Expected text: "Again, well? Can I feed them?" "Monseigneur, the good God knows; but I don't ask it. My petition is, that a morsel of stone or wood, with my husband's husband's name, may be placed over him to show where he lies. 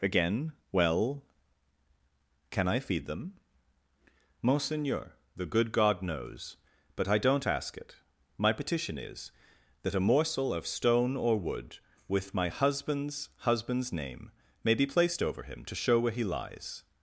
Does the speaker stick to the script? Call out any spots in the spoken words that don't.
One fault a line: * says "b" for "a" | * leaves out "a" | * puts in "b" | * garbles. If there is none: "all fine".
all fine